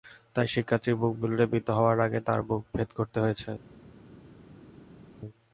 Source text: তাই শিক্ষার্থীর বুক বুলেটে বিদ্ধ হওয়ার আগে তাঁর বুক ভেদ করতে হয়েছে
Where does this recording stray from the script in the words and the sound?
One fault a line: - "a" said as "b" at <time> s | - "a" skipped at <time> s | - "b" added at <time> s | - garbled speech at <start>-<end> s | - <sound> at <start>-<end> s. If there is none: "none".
none